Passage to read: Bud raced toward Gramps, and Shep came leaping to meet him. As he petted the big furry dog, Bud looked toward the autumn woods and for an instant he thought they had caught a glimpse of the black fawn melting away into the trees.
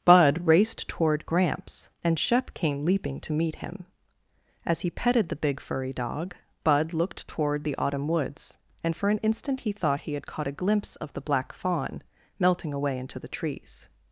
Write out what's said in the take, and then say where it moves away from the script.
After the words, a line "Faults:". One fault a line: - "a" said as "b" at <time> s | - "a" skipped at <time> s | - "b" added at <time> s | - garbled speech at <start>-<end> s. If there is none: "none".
Bud raced toward Gramps, and Shep came leaping to meet him. As he petted the big furry dog, Bud looked toward the autumn woods and for an instant he thought he had caught a glimpse of the black fawn melting away into the trees.
Faults:
- "they" said as "he" at 10.0 s